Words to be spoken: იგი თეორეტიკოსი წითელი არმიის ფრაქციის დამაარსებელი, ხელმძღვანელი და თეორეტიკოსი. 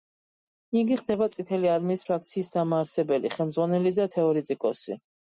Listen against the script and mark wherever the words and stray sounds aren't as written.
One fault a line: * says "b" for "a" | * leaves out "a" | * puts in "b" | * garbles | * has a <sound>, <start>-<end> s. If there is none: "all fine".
* says "ხდება" for "თეორეტიკოსი"